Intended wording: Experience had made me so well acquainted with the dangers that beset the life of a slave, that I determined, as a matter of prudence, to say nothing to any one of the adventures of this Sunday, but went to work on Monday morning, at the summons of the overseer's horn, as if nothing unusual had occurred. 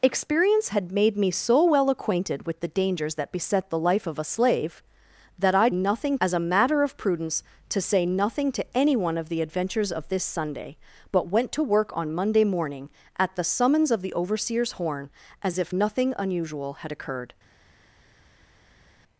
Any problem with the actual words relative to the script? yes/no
yes